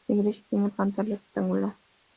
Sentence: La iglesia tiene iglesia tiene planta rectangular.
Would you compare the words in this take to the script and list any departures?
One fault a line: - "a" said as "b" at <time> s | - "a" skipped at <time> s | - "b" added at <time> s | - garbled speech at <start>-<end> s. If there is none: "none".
- "iglesia tiene" skipped at 0.7 s